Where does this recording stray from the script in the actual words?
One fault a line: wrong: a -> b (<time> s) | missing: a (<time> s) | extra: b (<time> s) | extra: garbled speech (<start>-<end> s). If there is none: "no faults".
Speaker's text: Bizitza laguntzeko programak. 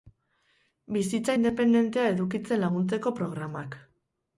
extra: independentea edukitzen (1.4 s)